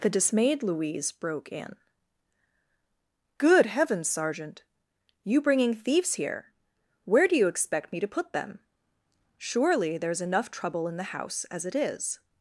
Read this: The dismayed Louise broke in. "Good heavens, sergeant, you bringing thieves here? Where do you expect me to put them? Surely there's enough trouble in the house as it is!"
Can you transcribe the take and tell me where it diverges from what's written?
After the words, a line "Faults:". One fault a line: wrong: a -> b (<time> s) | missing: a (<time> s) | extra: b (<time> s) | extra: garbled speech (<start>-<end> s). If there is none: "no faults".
The dismayed Louise broke in. "Good heavens, sergeant, you bringing thieves here? Where do you expect me to put them? Surely there's enough trouble in the house as it is!"
Faults:
no faults